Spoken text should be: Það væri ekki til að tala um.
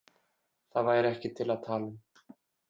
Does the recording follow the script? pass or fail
pass